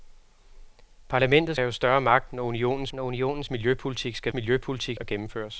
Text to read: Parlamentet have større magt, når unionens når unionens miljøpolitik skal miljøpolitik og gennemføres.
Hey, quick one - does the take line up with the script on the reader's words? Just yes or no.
yes